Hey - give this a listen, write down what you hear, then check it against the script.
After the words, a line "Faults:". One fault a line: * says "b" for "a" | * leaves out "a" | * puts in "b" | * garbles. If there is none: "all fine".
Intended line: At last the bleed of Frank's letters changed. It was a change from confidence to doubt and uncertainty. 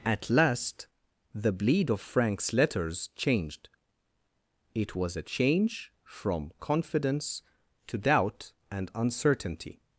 At last the bleed of Frank's letters changed. It was a change from confidence to doubt and uncertainty.
Faults:
all fine